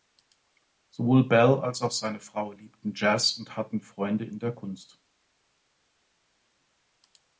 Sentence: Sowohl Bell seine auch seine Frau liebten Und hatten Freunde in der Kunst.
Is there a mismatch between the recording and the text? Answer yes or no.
yes